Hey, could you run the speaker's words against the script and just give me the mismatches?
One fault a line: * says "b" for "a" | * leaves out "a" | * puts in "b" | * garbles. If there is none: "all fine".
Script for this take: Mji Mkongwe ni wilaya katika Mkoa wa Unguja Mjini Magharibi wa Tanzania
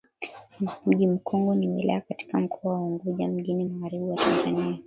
all fine